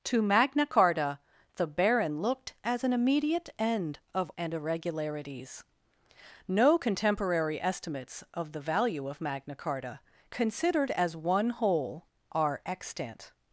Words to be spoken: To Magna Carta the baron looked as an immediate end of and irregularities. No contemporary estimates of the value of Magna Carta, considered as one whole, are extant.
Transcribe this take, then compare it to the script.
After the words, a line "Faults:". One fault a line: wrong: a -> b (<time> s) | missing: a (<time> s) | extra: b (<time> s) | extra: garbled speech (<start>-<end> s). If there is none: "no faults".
To Magna Carta the baron looked as an immediate end of and irregularities. No contemporary estimates of the value of Magna Carta, considered as one whole, are extant.
Faults:
no faults